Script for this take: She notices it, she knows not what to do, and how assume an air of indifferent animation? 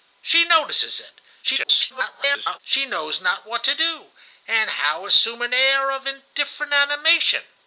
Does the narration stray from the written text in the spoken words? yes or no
yes